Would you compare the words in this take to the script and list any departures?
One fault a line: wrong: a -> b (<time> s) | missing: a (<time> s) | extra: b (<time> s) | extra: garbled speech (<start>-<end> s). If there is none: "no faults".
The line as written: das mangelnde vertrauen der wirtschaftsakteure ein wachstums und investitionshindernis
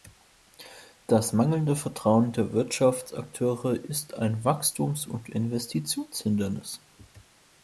extra: ist (3.8 s)